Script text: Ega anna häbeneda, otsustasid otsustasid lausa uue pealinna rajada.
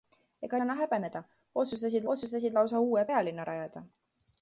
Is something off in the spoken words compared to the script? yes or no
no